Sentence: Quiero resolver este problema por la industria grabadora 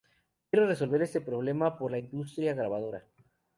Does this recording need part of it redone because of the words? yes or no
no